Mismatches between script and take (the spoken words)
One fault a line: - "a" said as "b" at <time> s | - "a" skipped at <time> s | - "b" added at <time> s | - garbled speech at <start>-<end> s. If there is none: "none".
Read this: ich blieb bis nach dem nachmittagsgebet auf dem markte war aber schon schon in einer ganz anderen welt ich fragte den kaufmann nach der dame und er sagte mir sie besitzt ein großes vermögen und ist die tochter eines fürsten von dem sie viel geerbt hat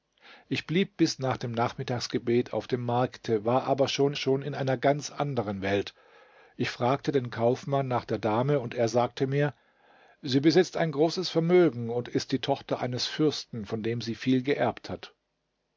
none